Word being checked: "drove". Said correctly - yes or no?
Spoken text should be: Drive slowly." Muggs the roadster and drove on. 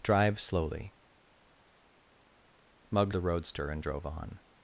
yes